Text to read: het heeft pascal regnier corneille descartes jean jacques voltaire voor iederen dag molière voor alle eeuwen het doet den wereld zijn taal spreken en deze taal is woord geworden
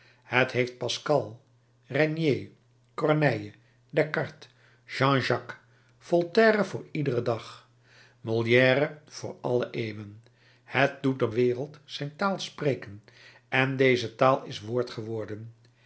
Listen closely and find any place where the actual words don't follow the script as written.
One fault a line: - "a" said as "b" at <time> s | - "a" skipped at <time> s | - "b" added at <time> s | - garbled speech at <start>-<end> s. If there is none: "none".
none